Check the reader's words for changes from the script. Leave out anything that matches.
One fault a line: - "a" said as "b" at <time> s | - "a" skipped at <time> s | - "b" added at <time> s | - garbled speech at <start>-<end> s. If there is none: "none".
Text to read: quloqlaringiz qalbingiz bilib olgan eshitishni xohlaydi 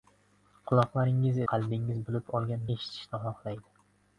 none